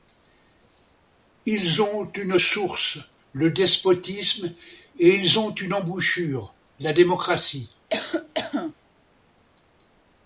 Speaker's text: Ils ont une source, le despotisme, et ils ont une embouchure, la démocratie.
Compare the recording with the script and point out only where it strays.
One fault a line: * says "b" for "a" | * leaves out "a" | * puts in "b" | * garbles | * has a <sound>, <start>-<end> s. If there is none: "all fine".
* has a cough, 7.9-8.7 s